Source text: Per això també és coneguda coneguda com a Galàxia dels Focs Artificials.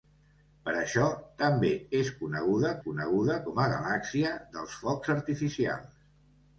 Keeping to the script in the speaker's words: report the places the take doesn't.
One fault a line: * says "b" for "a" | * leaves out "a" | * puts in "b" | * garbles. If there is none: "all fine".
all fine